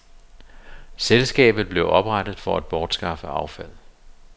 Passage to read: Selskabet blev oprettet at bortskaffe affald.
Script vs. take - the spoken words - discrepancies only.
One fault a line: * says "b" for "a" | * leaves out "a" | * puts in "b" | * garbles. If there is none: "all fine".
* puts in "for"